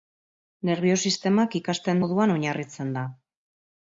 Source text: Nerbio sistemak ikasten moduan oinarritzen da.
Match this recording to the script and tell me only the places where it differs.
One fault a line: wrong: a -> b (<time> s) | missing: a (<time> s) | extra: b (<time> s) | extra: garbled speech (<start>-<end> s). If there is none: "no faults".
no faults